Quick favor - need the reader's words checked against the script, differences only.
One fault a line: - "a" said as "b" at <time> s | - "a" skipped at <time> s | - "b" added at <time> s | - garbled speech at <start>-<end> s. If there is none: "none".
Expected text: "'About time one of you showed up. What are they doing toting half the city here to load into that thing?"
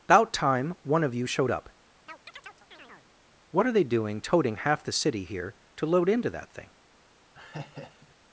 none